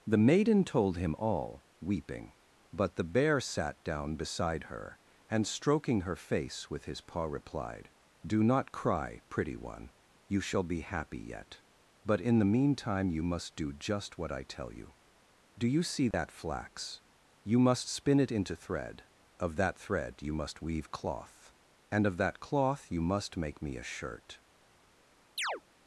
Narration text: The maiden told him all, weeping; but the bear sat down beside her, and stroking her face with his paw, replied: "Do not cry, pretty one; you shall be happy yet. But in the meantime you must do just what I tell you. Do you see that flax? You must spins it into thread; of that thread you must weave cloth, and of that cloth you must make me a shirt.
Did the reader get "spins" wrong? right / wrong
wrong